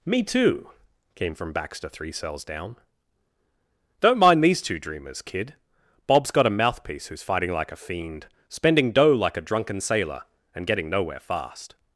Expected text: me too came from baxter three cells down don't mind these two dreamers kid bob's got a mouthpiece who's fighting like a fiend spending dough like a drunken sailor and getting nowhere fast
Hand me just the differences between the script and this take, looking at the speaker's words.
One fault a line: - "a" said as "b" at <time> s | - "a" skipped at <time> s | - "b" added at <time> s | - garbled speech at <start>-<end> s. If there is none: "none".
none